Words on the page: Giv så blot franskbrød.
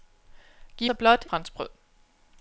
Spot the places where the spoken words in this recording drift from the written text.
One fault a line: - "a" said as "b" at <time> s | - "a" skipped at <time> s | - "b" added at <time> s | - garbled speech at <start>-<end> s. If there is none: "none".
none